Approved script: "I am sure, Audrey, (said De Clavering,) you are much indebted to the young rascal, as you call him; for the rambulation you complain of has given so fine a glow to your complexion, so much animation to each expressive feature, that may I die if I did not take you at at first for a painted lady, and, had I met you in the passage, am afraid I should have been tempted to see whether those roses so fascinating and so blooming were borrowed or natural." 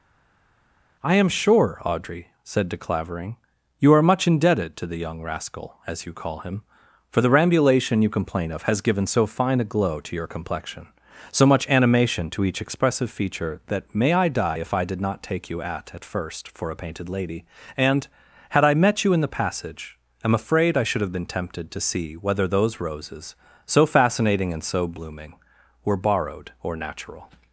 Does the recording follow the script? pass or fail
pass